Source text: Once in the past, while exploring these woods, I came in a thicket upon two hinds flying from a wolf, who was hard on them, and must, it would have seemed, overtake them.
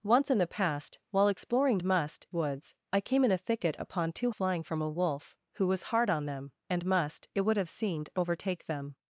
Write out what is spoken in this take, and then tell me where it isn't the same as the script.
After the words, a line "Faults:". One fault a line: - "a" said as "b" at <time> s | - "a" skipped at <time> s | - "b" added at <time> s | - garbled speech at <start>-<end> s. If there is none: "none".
Once in the past, while exploring must woods, I came in a thicket upon two flying from a wolf, who was hard on them, and must, it would have seemed, overtake them.
Faults:
- "these" said as "must" at 1.8 s
- "hinds" skipped at 4.3 s